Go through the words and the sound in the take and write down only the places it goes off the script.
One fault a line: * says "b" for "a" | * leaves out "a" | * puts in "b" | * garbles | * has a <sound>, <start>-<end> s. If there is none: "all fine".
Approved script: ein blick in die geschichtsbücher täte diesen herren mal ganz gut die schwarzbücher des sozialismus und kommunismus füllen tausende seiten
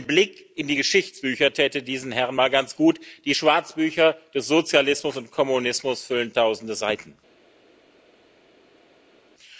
all fine